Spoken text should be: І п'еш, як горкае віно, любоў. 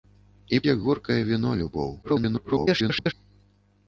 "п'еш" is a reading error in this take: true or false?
true